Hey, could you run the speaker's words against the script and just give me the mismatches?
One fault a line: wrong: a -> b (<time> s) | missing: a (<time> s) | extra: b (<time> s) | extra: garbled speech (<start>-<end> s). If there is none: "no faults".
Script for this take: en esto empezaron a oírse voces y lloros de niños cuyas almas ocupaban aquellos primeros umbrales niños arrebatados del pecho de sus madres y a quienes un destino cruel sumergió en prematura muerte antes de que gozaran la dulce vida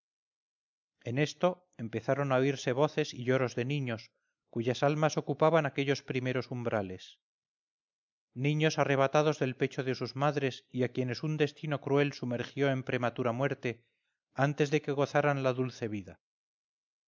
no faults